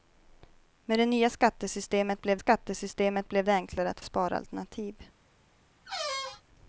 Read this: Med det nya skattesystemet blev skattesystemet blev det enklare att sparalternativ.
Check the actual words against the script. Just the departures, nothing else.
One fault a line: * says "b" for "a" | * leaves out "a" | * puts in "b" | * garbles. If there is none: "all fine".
all fine